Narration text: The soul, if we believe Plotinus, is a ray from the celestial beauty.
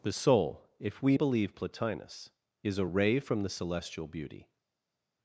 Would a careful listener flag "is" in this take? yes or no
no